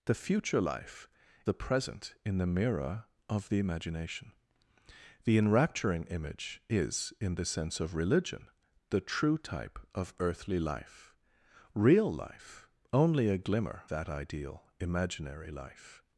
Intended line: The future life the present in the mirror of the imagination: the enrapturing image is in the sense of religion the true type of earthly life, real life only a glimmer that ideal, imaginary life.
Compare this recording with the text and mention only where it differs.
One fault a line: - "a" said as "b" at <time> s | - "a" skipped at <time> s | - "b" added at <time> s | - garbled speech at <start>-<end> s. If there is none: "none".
none